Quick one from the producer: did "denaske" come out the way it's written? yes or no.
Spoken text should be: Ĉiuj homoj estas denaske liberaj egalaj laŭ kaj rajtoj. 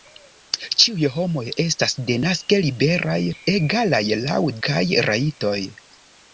yes